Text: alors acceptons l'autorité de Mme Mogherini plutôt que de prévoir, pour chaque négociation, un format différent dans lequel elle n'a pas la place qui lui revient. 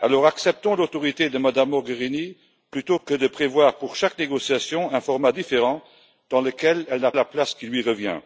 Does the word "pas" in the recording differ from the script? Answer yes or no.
yes